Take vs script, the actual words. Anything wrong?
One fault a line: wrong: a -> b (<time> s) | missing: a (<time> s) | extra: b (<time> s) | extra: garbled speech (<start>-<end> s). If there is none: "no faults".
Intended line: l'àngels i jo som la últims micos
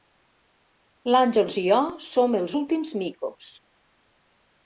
wrong: la -> els (2.4 s)